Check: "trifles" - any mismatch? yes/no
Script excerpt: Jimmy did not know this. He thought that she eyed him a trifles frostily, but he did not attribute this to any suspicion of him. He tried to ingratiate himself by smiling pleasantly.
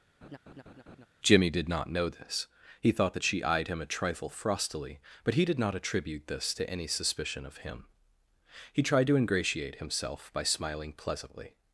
yes